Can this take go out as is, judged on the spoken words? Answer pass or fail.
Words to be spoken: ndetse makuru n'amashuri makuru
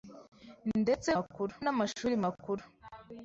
pass